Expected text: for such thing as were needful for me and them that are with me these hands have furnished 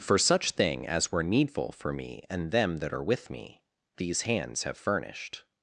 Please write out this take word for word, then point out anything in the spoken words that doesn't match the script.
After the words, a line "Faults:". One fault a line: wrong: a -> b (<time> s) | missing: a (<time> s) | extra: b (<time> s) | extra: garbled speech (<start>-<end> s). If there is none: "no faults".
for such thing as were needful for me and them that are with me these hands have furnished
Faults:
no faults